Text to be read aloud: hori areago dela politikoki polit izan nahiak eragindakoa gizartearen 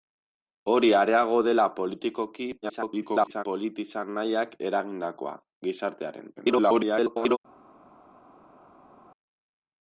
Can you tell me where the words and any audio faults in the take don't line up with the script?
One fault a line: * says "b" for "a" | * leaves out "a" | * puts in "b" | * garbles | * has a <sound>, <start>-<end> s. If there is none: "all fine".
* garbles
* garbles